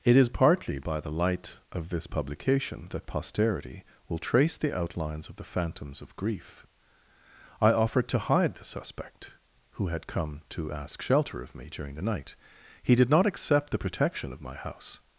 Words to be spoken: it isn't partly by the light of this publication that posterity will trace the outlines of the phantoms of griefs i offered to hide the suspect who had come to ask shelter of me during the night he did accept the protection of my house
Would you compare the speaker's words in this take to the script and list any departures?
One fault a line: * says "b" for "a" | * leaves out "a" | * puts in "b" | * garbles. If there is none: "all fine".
* says "is" for "isn't"
* says "grief" for "griefs"
* puts in "not"